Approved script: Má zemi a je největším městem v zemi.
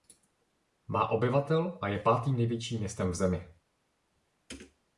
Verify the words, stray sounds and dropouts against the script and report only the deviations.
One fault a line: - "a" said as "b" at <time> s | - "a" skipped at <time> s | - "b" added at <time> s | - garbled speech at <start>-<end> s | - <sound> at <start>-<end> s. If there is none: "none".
- "zemi" said as "obyvatel" at 1.1 s
- "pátým" added at 2.0 s